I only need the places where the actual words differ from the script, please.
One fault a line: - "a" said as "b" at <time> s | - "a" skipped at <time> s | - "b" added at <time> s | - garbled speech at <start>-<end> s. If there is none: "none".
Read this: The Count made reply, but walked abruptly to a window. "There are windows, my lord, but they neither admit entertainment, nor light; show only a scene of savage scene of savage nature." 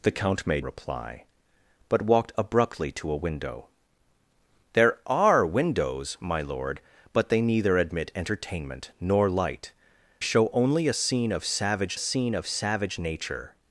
none